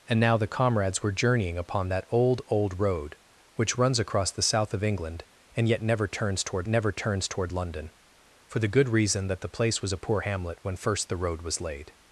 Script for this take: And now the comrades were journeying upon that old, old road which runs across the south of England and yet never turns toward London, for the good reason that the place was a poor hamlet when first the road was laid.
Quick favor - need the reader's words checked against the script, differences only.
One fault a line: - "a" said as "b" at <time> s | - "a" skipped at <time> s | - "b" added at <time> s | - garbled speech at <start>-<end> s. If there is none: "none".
- "never turns toward" added at 6.7 s